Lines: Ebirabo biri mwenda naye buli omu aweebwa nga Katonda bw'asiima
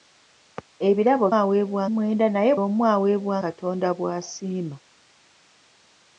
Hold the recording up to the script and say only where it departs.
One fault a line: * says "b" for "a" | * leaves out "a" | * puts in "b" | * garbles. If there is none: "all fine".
* says "aweebwa" for "biri"
* leaves out "buli"
* leaves out "nga"